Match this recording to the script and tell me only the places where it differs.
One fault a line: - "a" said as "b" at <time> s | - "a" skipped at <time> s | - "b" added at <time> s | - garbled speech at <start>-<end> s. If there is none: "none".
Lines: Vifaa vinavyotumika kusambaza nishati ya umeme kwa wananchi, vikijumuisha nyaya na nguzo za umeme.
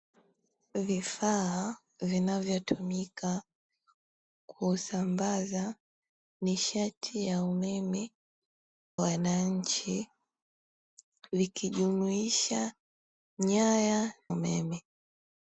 - "kwa" skipped at 8.1 s
- "na nguzo za" skipped at 14.1 s